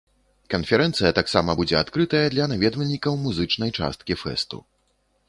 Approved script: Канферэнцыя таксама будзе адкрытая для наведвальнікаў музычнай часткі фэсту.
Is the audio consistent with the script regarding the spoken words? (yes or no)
yes